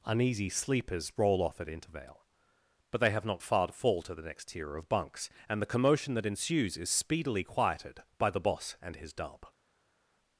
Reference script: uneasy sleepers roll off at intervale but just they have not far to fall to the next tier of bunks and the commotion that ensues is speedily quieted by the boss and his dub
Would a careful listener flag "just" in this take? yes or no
yes